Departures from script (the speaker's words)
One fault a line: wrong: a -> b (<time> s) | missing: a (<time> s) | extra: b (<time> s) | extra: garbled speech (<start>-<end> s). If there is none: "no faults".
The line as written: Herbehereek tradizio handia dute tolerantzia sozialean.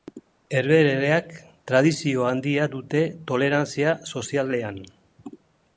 no faults